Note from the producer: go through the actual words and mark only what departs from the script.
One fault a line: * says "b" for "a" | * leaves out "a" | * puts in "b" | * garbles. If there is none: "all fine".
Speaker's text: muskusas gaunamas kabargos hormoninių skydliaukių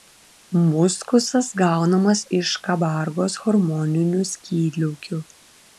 * puts in "iš"